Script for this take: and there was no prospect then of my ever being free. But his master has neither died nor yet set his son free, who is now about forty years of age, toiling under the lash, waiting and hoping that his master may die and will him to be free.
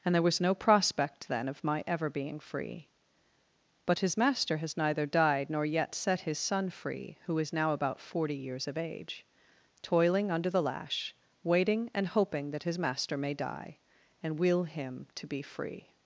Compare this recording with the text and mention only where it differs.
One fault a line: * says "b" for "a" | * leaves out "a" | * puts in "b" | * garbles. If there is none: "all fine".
all fine